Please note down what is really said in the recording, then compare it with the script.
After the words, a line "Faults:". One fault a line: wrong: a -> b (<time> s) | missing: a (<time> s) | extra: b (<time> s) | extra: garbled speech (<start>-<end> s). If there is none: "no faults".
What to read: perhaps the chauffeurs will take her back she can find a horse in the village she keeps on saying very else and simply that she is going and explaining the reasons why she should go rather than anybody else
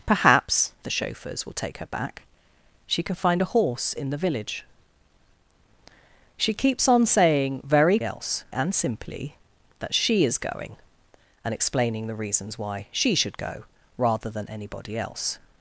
perhaps the chauffeurs will take her back she can find a horse in the village she keeps on saying very else and simply that she is going and explaining the reasons why she should go rather than anybody else
Faults:
no faults